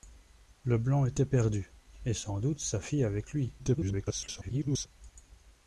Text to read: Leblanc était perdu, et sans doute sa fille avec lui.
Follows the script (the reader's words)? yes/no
no